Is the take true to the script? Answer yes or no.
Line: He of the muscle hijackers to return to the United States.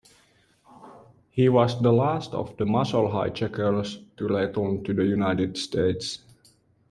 no